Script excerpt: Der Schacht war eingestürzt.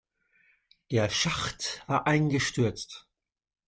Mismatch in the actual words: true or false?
false